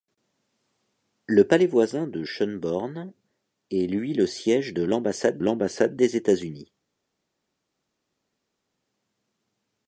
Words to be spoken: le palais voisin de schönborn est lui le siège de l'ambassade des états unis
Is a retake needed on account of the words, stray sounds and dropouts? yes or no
yes